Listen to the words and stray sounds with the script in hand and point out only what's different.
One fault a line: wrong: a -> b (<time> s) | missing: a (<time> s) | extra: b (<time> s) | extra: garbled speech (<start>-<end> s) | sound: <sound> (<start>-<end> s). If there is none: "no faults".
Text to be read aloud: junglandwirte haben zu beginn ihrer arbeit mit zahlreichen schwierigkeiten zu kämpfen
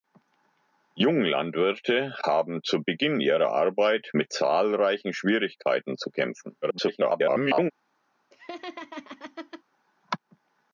extra: garbled speech (6.6-7.7 s)
sound: laugh (8.3-9.6 s)